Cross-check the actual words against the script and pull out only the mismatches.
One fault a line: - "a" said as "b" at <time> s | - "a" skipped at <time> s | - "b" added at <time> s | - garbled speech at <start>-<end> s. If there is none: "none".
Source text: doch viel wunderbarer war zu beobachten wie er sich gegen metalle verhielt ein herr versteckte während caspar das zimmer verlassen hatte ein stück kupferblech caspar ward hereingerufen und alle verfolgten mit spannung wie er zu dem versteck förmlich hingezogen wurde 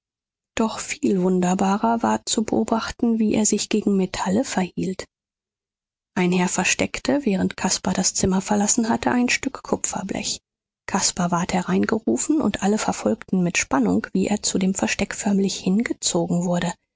none